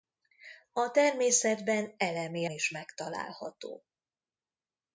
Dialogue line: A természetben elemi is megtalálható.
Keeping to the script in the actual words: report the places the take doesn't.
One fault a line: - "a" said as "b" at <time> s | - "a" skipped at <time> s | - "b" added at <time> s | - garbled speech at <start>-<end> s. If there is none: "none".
none